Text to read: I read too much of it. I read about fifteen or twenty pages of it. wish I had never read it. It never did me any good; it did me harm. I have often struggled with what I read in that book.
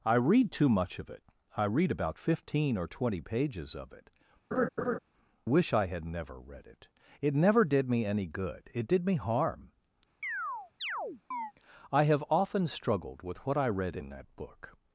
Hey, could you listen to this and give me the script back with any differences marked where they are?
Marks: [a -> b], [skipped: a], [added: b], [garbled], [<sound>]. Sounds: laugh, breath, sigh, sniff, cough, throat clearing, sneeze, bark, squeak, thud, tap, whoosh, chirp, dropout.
I read too much of it. I read about fifteen or twenty pages of it. [laugh] wish I had never read it. It never did me any good; it did me harm. [chirp] I have often struggled with what I read in that book.